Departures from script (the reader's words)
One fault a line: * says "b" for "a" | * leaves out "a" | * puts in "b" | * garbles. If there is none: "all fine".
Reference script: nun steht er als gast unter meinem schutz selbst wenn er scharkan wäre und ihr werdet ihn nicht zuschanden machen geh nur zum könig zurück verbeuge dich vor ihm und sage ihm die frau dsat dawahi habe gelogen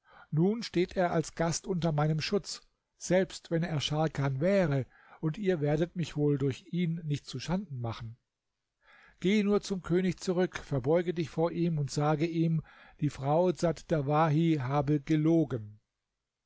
* puts in "mich wohl durch"